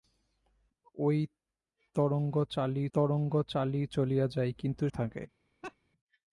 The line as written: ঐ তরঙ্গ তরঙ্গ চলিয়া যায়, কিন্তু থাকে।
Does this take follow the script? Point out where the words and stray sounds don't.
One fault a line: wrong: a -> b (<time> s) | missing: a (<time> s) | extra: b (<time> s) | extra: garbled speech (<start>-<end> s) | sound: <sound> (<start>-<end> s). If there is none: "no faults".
sound: laugh (5.6-5.8 s)